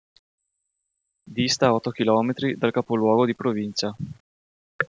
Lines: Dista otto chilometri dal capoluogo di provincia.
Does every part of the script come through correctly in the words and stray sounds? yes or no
yes